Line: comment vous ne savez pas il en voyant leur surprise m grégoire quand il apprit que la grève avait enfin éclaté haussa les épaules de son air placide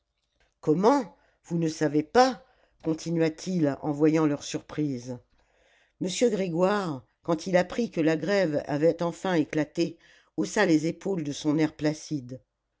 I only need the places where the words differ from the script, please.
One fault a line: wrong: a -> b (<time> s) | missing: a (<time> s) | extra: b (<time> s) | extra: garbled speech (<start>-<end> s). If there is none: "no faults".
extra: continua t (2.8 s)